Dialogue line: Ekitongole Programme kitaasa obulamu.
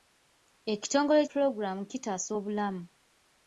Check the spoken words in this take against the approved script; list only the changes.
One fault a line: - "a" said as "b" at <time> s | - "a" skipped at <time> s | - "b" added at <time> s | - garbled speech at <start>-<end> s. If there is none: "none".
none